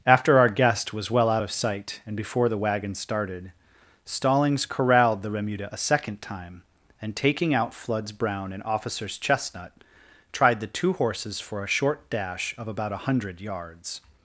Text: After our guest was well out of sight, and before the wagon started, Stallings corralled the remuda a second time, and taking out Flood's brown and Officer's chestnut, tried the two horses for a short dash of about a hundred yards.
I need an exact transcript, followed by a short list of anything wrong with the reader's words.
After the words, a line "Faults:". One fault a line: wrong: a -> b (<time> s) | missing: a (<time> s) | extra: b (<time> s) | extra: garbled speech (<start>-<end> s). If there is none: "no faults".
After our guest was well out of sight, and before the wagon started, Stallings corralled the remuda a second time, and taking out Flood's brown and Officer's chestnut, tried the two horses for a short dash of about a hundred yards.
Faults:
no faults